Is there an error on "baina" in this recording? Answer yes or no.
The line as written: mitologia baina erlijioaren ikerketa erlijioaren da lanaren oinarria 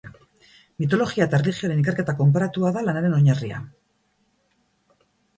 yes